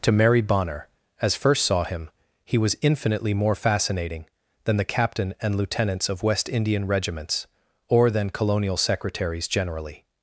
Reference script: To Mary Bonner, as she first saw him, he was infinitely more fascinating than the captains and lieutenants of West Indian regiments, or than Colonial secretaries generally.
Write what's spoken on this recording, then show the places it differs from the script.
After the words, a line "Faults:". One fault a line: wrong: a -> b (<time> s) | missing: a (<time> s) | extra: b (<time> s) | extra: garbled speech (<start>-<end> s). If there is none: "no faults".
To Mary Bonner, as first saw him, he was infinitely more fascinating than the captain and lieutenants of West Indian regiments, or than Colonial secretaries generally.
Faults:
missing: she (1.4 s)
wrong: captains -> captain (4.8 s)